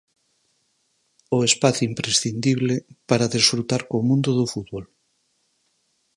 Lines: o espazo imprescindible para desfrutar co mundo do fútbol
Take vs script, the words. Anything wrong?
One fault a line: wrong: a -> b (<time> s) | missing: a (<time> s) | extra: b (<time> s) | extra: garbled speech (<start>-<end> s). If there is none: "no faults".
no faults